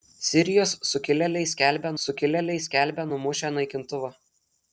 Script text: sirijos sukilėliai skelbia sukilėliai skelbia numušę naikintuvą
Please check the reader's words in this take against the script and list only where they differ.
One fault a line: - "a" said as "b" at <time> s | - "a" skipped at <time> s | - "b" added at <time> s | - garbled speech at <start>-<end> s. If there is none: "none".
none